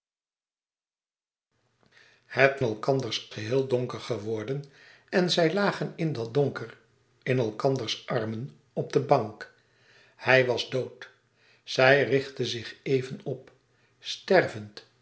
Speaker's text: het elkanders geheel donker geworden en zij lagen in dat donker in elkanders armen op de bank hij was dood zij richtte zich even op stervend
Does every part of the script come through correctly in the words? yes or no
yes